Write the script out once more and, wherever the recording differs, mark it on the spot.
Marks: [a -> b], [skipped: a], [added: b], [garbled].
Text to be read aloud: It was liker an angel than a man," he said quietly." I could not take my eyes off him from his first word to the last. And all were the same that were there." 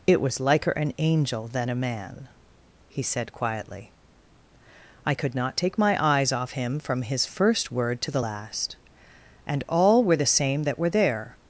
It was liker an angel than a man," he said quietly." I could not take my eyes off him from his first word to the last. And all were the same that were there."